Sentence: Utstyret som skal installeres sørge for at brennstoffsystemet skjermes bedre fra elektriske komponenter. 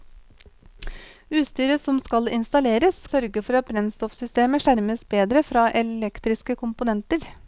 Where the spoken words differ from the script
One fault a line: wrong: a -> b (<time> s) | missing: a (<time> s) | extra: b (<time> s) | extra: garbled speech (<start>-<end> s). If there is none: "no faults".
no faults